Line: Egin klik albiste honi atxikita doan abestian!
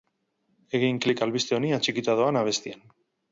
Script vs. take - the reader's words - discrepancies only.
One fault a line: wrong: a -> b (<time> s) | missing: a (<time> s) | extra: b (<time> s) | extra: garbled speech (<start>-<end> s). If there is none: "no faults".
no faults